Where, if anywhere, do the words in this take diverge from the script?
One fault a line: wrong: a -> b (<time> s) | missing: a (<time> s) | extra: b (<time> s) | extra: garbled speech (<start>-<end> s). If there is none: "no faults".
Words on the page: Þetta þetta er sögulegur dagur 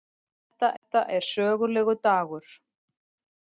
no faults